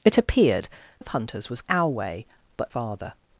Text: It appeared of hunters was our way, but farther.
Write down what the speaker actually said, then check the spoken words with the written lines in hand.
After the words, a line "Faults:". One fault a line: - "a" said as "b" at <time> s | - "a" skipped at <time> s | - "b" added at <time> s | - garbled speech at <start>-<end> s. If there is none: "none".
It appeared of hunters was our way, but farther.
Faults:
none